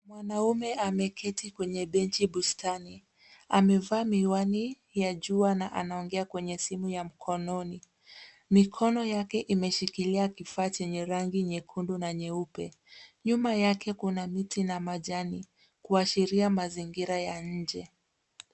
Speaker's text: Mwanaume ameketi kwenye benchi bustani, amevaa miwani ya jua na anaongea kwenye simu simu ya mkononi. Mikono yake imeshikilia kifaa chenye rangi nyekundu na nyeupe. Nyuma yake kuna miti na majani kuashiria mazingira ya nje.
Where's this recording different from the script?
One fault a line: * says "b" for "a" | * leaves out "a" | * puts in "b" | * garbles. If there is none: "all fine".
* leaves out "simu"